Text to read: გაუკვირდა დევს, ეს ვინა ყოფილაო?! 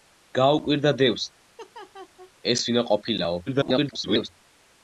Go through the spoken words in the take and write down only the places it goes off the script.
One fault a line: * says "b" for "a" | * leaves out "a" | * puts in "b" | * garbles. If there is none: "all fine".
* garbles